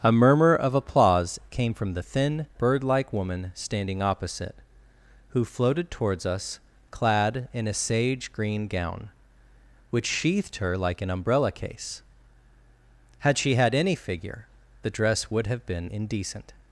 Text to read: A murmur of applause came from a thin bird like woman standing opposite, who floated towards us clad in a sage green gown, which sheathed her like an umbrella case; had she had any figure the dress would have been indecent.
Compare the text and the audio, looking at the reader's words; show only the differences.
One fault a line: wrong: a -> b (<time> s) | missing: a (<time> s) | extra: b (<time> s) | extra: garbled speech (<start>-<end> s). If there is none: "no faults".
wrong: a -> the (1.9 s)